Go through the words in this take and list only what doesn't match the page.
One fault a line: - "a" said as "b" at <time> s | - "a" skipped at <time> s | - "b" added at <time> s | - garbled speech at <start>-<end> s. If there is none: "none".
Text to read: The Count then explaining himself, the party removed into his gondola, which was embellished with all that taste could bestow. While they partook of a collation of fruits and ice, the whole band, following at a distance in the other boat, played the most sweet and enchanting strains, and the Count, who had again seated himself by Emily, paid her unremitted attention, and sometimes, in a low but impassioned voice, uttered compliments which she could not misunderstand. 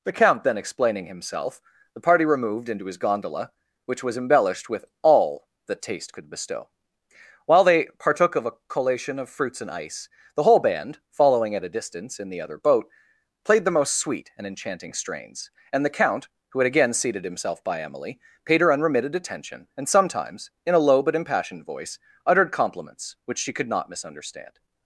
none